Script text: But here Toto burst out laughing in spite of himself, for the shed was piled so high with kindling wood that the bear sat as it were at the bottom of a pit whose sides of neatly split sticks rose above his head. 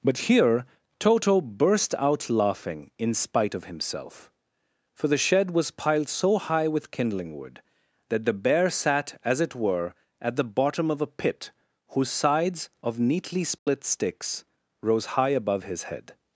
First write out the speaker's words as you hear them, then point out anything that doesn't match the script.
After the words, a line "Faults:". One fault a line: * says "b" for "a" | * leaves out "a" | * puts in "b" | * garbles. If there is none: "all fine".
But here Toto burst out laughing in spite of himself, for the shed was piled so high with kindling wood that the bear sat as it were at the bottom of a pit whose sides of neatly split sticks rose high above his head.
Faults:
* puts in "high"